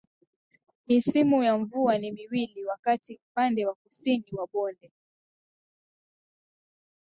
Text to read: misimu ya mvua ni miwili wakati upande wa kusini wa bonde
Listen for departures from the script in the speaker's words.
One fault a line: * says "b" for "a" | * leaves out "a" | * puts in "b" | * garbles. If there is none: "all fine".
all fine